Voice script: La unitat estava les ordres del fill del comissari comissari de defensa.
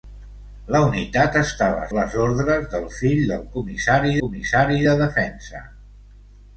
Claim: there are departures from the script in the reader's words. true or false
false